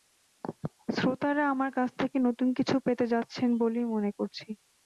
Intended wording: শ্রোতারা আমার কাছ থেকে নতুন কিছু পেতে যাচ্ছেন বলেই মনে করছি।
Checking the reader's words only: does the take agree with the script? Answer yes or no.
yes